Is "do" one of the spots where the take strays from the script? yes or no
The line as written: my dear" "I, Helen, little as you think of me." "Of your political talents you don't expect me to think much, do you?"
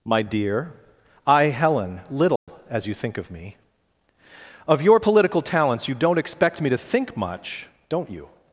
yes